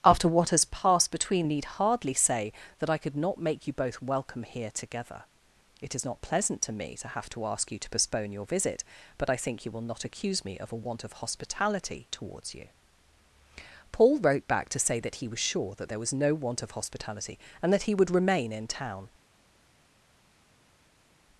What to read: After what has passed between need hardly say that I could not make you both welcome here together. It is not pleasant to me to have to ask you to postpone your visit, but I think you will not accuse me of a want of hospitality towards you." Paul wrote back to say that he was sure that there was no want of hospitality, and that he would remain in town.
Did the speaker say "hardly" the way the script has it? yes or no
yes